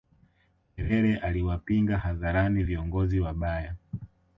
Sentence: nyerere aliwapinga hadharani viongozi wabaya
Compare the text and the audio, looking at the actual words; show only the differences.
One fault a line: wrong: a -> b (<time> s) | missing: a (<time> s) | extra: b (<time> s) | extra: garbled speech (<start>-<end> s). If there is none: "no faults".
no faults